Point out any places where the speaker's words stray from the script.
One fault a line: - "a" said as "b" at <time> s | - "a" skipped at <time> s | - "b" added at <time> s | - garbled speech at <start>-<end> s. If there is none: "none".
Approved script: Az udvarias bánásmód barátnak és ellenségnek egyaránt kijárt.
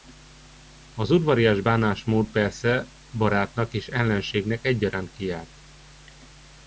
- "persze" added at 2.3 s